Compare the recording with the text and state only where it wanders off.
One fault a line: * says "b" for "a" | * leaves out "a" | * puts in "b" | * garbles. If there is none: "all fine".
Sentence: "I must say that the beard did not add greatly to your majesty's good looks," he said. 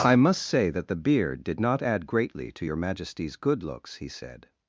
all fine